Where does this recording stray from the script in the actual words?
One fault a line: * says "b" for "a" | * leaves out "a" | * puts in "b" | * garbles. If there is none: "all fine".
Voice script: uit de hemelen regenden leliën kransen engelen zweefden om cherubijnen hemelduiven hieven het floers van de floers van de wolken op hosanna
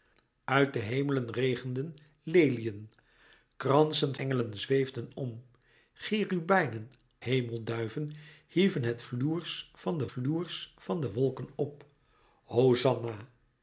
all fine